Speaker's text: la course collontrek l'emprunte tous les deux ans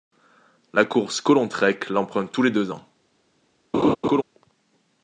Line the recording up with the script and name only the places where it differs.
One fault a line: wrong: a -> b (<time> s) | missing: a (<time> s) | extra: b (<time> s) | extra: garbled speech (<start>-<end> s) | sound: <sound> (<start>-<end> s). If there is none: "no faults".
sound: laugh (3.7-4.2 s)